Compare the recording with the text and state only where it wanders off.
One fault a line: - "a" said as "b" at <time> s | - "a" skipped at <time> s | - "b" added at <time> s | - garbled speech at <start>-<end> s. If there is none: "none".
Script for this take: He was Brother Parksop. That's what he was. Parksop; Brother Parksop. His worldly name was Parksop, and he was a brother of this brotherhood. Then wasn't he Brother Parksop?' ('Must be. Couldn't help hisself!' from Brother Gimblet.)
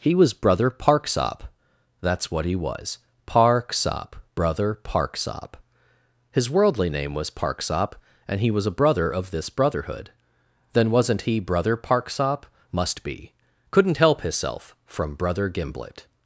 none